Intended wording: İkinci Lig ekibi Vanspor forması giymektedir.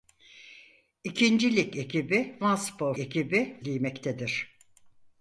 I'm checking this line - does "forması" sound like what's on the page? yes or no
no